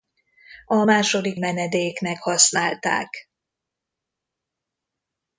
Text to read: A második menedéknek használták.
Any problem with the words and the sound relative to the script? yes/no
no